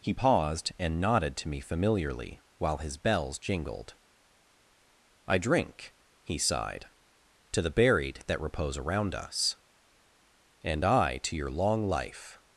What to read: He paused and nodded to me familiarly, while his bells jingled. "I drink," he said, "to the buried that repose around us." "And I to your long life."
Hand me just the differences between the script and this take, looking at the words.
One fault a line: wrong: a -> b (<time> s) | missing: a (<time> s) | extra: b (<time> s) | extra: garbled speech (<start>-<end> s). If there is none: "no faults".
wrong: said -> sighed (6.4 s)